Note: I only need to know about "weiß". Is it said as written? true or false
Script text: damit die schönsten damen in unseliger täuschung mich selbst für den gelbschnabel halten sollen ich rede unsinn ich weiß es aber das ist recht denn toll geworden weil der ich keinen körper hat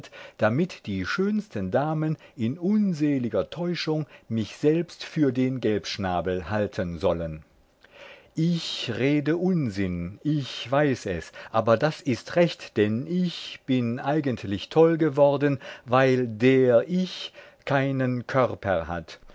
true